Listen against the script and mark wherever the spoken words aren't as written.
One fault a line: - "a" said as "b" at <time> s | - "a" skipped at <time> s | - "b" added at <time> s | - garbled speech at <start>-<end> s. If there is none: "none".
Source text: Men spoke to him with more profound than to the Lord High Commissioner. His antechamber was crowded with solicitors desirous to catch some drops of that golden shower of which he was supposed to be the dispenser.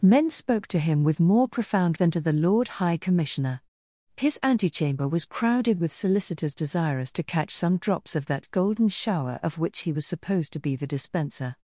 none